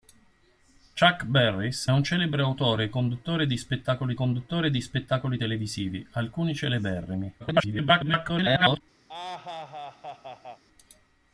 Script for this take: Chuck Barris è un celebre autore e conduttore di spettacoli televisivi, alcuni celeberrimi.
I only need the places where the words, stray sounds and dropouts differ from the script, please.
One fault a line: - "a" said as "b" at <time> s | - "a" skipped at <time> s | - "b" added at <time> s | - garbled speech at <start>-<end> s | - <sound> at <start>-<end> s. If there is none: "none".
- "è" skipped at 1.9 s
- "conduttore di spettacoli" added at 4.1 s
- garbled speech at 7.4-8.8 s
- laugh at 9.1-10.6 s